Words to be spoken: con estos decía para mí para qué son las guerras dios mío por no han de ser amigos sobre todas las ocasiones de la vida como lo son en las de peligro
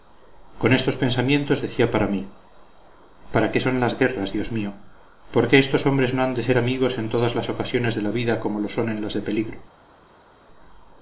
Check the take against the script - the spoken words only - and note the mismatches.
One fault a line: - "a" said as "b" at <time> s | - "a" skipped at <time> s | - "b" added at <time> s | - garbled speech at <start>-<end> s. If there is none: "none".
- "pensamientos" added at 1.0 s
- "qué estos hombres" added at 5.5 s
- "sobre" said as "en" at 7.0 s